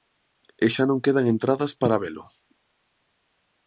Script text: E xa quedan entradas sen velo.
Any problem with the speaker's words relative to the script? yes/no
yes